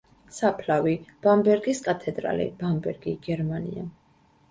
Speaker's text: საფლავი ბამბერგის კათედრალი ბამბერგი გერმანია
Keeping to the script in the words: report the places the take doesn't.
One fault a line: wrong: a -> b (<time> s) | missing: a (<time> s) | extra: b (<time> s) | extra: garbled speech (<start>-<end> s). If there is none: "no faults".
no faults